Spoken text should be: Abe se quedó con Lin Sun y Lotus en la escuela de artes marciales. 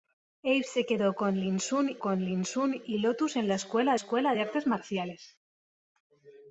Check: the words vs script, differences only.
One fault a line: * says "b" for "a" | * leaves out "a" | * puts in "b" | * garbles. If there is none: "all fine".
* puts in "con Lin Sun"
* puts in "escuela"